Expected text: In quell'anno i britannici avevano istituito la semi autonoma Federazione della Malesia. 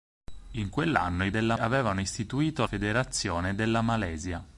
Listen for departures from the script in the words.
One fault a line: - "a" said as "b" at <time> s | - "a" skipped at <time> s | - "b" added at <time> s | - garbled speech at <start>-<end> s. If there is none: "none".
- "britannici" said as "della" at 1.3 s
- "la semi autonoma" skipped at 2.6 s